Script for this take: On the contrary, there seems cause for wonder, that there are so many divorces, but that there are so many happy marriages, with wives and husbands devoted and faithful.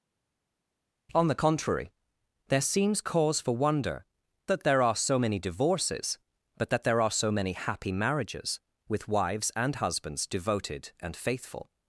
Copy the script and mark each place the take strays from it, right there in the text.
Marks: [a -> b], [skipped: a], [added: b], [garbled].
On the contrary, there seems cause for wonder, that there are so many divorces, but that there are so many happy marriages, with wives and husbands devoted and faithful.